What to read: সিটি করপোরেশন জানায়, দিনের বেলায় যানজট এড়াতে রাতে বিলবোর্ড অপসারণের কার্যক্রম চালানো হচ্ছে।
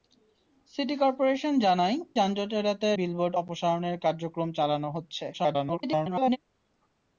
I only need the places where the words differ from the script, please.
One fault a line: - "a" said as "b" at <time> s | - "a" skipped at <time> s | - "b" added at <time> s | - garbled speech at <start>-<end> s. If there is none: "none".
- "দিনের বেলায়" skipped at 2.0 s
- "রাতে" skipped at 2.9 s
- garbled speech at 5.3-6.4 s